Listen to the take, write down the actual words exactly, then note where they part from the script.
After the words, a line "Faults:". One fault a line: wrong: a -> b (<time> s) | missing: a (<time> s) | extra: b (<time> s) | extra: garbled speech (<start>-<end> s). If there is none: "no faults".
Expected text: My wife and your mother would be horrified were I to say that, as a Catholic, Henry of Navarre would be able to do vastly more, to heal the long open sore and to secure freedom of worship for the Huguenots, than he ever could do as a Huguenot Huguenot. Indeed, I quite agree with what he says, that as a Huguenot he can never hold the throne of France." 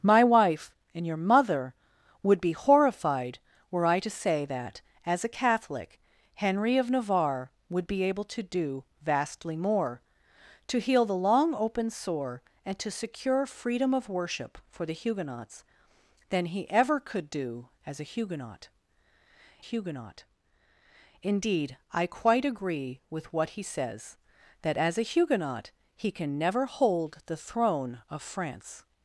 My wife and your mother would be horrified were I to say that, as a Catholic, Henry of Navarre would be able to do vastly more, to heal the long open sore and to secure freedom of worship for the Huguenots, than he ever could do as a Huguenot Huguenot. Indeed, I quite agree with what he says, that as a Huguenot he can never hold the throne of France."
Faults:
no faults